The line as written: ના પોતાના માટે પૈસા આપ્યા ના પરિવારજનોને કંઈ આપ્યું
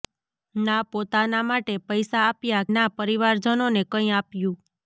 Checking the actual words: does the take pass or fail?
pass